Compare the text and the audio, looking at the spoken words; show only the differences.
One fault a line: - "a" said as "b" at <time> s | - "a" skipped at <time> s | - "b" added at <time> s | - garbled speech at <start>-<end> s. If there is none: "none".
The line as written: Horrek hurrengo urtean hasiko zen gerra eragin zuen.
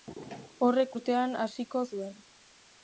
- "hurrengo" skipped at 0.9 s
- "zen gerra eragin" skipped at 1.8 s